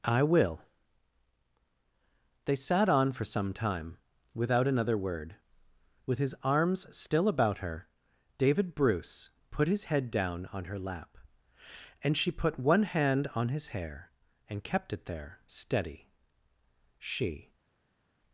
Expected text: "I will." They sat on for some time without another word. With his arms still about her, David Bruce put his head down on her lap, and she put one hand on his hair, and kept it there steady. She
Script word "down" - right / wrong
right